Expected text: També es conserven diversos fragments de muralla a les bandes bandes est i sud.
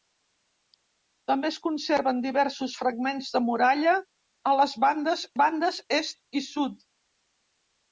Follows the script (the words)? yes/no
yes